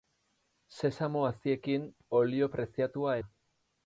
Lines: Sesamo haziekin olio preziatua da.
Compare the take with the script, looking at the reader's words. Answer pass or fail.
pass